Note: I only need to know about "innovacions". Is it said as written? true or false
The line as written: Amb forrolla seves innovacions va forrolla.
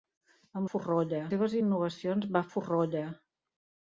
true